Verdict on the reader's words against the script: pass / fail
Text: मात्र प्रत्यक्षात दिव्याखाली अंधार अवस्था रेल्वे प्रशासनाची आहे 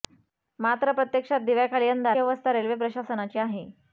pass